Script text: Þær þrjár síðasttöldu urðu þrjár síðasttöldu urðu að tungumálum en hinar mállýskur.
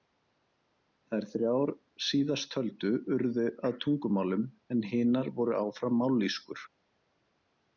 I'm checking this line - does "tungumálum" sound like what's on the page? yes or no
yes